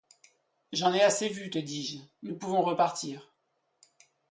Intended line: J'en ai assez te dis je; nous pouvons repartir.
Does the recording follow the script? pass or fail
fail